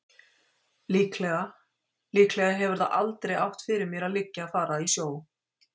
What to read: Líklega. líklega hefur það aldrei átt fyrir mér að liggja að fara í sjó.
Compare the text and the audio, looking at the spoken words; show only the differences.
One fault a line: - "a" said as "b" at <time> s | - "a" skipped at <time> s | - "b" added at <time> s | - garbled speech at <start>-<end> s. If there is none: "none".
none